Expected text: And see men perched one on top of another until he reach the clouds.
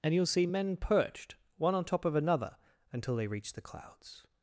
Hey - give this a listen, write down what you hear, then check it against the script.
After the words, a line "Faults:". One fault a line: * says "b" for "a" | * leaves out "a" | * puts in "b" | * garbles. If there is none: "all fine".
And you'll see men perched one on top of another until they reach the clouds.
Faults:
* puts in "you'll"
* says "they" for "he"